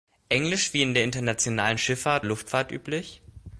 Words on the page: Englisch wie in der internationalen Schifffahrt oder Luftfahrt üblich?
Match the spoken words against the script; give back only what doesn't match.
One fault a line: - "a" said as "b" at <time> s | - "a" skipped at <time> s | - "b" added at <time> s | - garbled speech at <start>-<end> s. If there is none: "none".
- "oder" skipped at 2.3 s